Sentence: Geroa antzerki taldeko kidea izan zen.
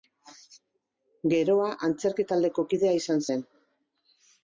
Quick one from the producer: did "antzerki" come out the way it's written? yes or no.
yes